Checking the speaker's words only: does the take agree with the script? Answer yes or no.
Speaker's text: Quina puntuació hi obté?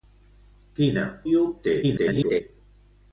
no